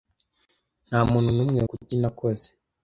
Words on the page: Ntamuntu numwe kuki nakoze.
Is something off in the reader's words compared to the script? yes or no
no